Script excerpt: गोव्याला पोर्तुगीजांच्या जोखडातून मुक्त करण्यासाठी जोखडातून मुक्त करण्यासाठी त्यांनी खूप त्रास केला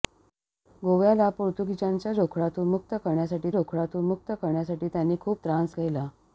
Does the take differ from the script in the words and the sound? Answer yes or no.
no